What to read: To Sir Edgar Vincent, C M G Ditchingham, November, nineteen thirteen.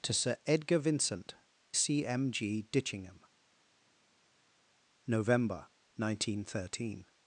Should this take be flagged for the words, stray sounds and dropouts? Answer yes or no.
no